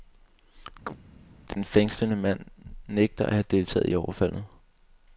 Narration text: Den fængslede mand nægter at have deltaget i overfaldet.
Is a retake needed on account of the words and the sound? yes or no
yes